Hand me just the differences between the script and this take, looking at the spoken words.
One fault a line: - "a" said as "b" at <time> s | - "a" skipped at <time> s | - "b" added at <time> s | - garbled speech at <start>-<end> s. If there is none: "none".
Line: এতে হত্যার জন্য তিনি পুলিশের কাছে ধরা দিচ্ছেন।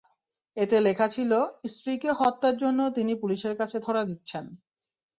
- "লেখা ছিল স্ত্রীকে" added at 0.8 s